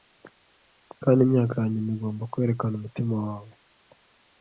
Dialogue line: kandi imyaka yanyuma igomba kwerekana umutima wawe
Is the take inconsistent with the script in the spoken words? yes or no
no